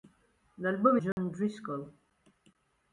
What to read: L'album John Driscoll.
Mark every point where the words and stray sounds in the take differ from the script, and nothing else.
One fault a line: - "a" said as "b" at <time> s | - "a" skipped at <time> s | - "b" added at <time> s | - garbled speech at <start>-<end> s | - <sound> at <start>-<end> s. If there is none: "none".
- dropout at 1.1-1.2 s